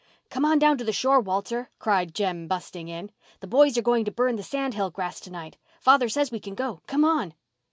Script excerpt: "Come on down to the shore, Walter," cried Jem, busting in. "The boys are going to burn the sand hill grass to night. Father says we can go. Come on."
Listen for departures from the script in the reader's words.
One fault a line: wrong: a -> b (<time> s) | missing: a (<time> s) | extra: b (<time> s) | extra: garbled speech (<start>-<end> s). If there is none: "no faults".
no faults